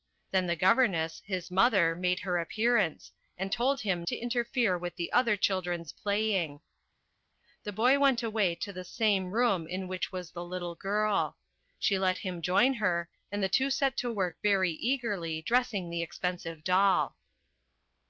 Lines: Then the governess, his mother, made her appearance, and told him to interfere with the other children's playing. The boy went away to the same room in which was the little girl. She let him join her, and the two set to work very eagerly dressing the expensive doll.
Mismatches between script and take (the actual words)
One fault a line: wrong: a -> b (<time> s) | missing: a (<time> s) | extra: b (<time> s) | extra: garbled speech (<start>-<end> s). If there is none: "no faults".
no faults